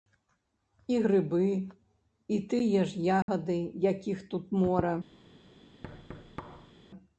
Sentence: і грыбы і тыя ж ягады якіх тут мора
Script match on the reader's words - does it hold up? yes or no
yes